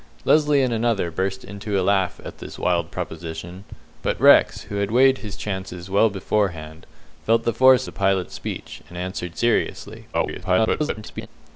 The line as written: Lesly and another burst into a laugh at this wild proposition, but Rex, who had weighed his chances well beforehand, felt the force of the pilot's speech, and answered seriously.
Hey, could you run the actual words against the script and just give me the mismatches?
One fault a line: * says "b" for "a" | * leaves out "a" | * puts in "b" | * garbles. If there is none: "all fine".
* leaves out "of"
* garbles